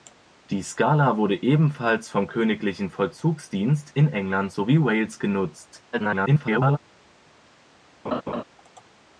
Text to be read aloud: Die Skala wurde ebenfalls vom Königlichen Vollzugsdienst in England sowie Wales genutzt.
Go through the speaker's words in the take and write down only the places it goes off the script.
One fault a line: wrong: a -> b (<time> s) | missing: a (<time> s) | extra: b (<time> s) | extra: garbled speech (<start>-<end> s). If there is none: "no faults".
extra: garbled speech (5.9-6.8 s)